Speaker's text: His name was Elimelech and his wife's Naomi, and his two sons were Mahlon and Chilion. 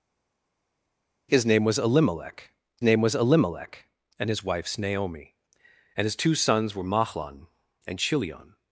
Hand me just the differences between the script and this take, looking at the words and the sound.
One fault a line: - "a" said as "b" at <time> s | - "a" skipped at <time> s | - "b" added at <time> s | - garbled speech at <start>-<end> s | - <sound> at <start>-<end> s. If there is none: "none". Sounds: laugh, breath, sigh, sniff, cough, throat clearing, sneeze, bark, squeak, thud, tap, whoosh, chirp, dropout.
- "name was Elimelech" added at 2.8 s